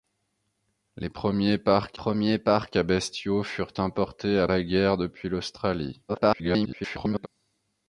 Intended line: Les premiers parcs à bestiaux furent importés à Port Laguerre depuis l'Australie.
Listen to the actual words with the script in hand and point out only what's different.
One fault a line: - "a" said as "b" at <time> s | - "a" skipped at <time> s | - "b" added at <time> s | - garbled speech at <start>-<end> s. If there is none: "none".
- "premiers parcs" added at 1.9 s
- "Port" skipped at 4.5 s
- garbled speech at 6.1-7.3 s